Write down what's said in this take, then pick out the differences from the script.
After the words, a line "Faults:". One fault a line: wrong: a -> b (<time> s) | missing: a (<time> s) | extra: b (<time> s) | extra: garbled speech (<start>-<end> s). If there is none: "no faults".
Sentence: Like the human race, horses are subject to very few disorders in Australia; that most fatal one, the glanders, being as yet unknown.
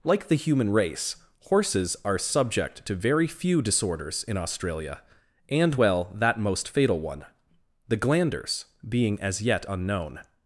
Like the human race, horses are subject to very few disorders in Australia; and well that most fatal one, the glanders, being as yet unknown.
Faults:
extra: and well (5.5 s)